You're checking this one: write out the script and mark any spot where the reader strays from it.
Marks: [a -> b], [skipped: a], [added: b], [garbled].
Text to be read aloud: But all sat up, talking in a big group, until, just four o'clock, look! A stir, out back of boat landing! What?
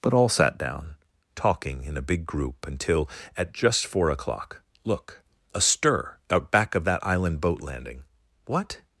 But all sat [up, -> down] talking in a big group, until, [added: at] just four o'clock, look! A stir, out back of [added: that island] boat landing! What?